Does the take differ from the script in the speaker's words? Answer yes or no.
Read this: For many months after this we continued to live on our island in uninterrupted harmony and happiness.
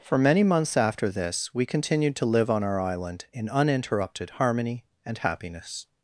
no